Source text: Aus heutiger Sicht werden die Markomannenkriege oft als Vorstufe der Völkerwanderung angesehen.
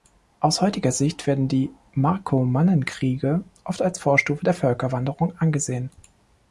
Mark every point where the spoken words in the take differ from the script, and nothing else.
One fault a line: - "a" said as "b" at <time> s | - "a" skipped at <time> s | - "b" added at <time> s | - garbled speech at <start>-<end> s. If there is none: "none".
none